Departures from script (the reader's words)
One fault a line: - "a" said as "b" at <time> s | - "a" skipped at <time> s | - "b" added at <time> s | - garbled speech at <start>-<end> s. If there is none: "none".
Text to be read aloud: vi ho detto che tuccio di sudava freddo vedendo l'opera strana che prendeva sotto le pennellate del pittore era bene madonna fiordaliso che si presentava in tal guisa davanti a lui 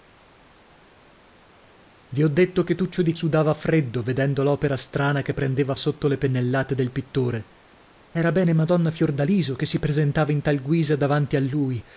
none